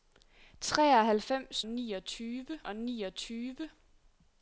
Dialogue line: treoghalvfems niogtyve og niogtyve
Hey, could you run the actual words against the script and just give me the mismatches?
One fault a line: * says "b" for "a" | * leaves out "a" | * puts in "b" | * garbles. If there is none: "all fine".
all fine